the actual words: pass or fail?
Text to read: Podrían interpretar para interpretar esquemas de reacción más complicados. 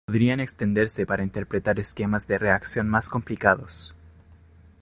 fail